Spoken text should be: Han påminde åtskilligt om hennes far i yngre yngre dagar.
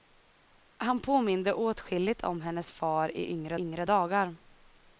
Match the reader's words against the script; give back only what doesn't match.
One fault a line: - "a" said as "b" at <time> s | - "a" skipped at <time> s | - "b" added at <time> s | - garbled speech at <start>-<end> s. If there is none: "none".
none